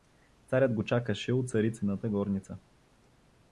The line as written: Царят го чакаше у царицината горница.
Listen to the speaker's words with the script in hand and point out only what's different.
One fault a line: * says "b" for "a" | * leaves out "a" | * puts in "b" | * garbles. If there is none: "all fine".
all fine